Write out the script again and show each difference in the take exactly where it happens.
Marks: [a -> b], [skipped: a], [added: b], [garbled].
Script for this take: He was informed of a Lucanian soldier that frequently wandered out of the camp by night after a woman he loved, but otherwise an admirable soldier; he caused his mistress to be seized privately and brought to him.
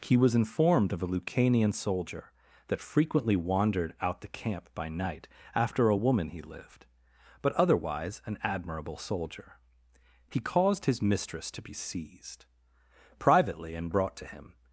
He was informed of a Lucanian soldier that frequently wandered out [skipped: of] the camp by night after a woman he [loved, -> lived] but otherwise an admirable soldier; he caused his mistress to be seized privately and brought to him.